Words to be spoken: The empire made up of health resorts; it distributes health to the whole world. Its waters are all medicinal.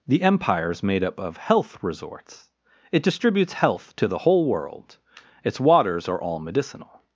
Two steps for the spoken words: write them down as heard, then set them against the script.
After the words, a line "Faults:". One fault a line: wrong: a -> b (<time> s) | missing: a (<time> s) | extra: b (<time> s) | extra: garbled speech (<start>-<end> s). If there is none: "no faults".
The empire is made up of health resorts; it distributes health to the whole world. Its waters are all medicinal.
Faults:
extra: is (0.7 s)